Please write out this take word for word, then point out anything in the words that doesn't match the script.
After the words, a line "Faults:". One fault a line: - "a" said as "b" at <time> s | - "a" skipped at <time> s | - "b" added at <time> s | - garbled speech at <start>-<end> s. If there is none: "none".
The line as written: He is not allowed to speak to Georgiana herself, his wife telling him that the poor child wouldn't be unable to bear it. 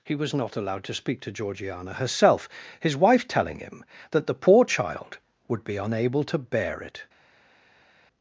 He was not allowed to speak to Georgiana herself, his wife telling him that the poor child would be unable to bear it.
Faults:
- "is" said as "was" at 0.1 s
- "wouldn't" said as "would" at 5.5 s